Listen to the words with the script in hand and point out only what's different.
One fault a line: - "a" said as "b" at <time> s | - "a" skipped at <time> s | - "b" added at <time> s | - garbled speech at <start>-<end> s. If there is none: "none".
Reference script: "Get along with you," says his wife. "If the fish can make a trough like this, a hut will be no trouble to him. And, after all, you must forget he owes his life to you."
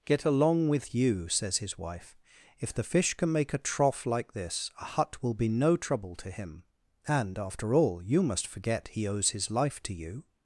none